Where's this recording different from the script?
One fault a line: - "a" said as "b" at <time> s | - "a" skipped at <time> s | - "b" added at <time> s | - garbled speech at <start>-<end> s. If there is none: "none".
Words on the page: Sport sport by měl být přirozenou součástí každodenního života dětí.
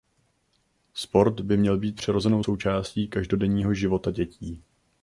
- "sport" skipped at 1.4 s